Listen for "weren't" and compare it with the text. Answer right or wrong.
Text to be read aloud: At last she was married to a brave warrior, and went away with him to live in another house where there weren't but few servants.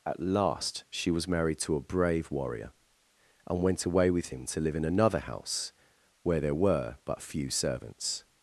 wrong